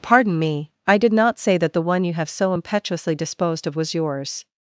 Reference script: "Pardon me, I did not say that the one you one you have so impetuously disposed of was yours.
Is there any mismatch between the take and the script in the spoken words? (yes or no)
yes